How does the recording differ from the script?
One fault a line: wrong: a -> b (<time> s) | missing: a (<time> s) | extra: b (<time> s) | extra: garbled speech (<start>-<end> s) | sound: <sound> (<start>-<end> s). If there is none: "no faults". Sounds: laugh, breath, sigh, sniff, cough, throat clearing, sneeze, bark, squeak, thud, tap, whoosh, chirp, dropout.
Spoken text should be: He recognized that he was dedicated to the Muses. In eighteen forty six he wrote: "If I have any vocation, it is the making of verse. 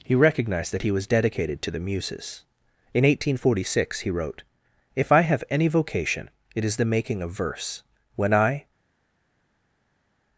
extra: When I (8.2 s)